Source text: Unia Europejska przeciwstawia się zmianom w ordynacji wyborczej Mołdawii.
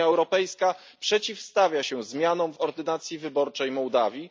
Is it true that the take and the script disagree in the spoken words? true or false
false